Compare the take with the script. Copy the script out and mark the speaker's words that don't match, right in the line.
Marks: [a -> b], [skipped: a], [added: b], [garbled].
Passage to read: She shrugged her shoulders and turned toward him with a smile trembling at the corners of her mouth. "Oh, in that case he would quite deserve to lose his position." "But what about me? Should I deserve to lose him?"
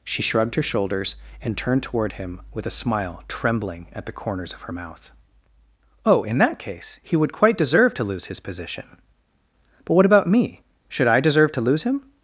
She shrugged her shoulders and turned toward him with a smile trembling at the corners of her mouth. "Oh, in that case he would quite deserve to lose his position." "But what about me? Should I deserve to lose him?"